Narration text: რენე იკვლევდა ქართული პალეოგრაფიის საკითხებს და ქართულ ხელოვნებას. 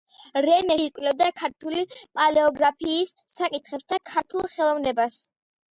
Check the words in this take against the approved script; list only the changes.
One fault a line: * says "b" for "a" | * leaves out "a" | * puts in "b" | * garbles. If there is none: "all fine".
all fine